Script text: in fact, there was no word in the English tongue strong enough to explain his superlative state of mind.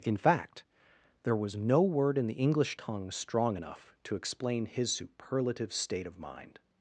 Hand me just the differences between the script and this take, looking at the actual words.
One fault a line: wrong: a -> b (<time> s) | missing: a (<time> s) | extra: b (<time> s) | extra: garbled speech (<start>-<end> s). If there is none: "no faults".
no faults